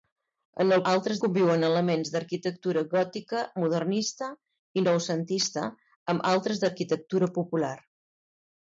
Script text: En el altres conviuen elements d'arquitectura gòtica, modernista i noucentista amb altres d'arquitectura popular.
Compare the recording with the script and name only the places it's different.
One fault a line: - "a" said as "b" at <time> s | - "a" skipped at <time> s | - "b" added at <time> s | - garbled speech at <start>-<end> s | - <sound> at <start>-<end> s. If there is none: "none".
none